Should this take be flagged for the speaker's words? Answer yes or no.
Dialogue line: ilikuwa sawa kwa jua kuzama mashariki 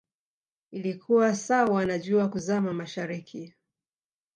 yes